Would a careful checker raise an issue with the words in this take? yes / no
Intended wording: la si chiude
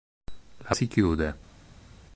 no